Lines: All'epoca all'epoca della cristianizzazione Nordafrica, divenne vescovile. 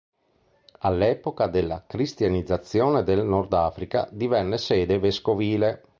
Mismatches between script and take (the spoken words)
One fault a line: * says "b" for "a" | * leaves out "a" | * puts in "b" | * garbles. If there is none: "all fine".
* leaves out "all'epoca"
* puts in "del"
* puts in "sede"